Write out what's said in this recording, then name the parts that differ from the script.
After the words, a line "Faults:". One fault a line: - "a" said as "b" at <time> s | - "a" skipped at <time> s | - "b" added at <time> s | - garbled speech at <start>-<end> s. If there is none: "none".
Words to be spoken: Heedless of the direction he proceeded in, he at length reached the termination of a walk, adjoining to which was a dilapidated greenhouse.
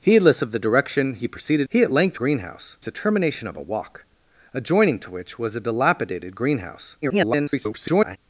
Heedless of the direction he proceeded he at length greenhouse the termination of a walk, adjoining to which was a dilapidated greenhouse. [garbled]
Faults:
- "in" skipped at 1.7 s
- "reached" said as "greenhouse" at 2.2 s
- garbled speech at 7.0-8.2 s